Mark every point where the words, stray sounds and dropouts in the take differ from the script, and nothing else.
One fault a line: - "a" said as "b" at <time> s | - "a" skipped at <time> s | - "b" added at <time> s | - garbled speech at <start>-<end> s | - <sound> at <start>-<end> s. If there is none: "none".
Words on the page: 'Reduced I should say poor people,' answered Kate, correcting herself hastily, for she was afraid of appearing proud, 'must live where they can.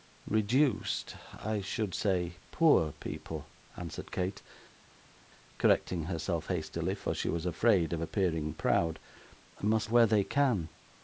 - "live" skipped at 9.9 s